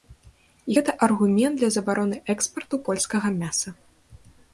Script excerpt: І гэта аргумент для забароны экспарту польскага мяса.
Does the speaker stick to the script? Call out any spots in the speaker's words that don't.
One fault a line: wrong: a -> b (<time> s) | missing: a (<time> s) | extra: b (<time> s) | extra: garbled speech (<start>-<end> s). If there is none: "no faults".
no faults